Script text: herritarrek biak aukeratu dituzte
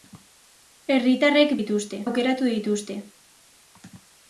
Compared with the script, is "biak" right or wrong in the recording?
wrong